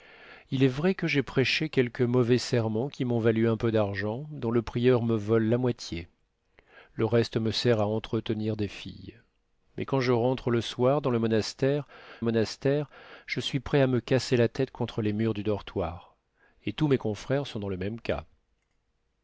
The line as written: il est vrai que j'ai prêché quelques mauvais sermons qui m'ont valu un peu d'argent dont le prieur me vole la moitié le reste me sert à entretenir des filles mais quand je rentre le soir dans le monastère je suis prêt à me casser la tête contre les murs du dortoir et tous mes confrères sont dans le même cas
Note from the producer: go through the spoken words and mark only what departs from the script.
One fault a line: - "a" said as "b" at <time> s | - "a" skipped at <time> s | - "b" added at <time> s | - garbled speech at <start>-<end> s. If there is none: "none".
- "monastère" added at 12.2 s